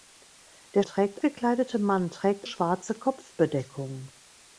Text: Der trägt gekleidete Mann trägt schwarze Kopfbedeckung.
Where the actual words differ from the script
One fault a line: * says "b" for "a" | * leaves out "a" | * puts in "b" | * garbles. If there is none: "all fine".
all fine